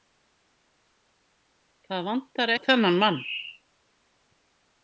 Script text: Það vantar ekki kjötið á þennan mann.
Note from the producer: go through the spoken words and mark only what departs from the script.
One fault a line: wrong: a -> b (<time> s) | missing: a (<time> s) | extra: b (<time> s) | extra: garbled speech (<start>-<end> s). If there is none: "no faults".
missing: ekki kjötið (2.5 s)